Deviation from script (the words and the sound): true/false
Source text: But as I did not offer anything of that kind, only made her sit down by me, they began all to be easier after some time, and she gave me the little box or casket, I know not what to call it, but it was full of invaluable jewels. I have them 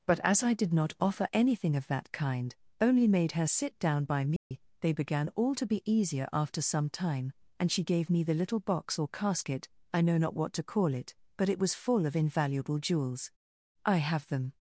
true